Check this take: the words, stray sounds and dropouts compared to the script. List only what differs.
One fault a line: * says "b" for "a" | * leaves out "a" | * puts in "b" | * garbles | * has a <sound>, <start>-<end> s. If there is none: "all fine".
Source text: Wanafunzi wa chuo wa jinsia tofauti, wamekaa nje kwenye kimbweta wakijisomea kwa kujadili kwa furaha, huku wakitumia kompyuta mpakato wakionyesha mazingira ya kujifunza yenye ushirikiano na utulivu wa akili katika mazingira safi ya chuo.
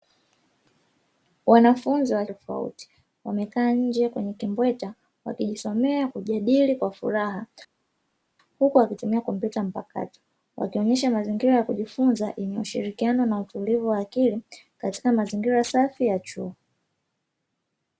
* leaves out "chuo wa jinsia"
* leaves out "kwa"